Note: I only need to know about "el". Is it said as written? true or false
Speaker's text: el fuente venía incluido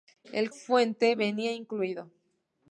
true